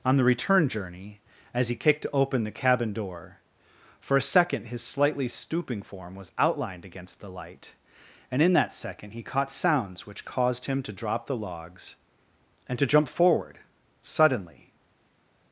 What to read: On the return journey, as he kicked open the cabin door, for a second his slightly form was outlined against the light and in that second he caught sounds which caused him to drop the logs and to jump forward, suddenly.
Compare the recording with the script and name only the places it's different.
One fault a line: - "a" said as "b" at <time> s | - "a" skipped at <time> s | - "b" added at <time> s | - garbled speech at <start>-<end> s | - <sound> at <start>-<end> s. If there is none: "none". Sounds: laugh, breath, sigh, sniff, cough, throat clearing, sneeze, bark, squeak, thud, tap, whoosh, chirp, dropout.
- "stooping" added at 5.3 s